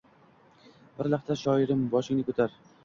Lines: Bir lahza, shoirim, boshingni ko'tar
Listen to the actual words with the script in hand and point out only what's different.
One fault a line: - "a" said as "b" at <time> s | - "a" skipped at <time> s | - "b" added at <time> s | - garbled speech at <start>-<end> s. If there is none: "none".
none